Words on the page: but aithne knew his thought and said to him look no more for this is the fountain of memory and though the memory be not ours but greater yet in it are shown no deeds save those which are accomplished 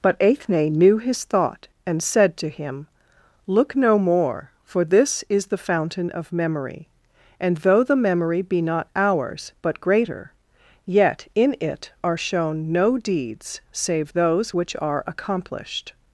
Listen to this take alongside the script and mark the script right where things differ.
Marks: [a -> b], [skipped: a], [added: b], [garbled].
but aithne knew his thought and said to him look no more for this is the fountain of memory and though the memory be not ours but greater yet in it are shown no deeds save those which are accomplished